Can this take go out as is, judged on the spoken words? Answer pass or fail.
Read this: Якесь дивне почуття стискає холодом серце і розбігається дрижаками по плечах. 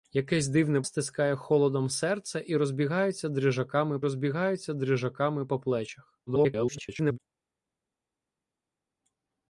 fail